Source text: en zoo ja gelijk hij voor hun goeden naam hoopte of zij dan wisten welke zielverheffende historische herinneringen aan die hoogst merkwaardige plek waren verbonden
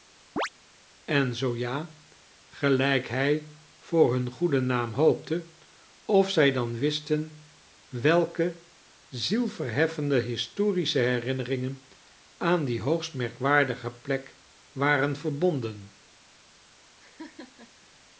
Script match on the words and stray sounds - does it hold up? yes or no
no